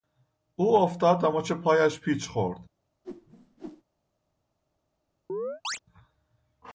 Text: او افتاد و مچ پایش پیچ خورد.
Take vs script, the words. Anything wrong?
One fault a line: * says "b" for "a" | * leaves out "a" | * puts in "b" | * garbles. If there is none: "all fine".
all fine